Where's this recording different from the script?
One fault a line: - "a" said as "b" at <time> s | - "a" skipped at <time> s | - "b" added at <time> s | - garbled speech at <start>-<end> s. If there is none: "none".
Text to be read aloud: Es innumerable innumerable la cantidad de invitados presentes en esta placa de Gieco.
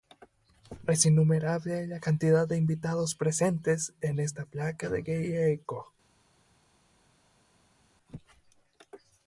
- "innumerable" skipped at 1.9 s